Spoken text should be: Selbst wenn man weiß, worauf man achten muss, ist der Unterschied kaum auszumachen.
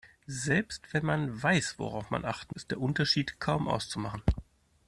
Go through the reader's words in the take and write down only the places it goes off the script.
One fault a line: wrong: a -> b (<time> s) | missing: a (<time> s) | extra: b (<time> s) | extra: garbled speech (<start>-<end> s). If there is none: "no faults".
missing: muss (2.5 s)